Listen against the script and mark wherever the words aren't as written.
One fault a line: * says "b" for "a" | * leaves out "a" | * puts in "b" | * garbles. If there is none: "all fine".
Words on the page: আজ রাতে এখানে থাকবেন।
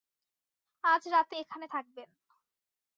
all fine